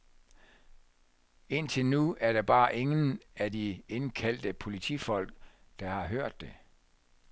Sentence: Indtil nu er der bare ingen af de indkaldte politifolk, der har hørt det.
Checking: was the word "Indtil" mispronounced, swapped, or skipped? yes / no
no